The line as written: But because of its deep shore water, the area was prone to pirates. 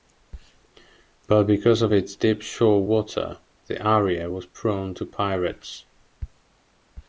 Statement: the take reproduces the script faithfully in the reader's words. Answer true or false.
true